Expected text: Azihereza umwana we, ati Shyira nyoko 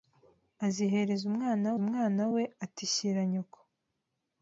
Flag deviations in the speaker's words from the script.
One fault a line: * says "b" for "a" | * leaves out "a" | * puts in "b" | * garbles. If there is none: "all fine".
* puts in "umwana"